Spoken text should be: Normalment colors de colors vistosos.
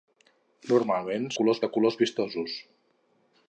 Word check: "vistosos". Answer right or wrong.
right